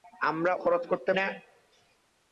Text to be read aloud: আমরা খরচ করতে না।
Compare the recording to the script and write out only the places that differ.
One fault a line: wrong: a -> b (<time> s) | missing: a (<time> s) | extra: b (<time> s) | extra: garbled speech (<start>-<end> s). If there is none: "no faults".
no faults